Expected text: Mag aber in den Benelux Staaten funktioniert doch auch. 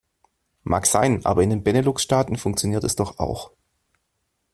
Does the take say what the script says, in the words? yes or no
no